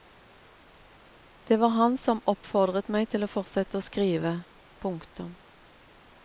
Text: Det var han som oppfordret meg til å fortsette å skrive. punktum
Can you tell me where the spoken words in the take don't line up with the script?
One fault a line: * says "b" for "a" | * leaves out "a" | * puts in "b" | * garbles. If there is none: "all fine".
all fine